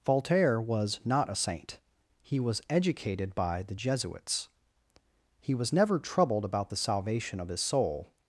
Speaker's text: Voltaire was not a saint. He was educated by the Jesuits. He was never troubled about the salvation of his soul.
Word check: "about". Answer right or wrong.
right